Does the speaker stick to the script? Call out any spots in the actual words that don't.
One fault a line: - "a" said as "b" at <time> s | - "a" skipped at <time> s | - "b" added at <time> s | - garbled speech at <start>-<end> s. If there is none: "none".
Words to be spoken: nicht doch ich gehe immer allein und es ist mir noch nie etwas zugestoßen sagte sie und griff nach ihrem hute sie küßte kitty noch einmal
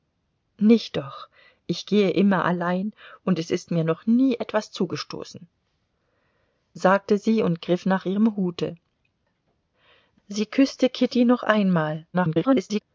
- garbled speech at 12.1-12.8 s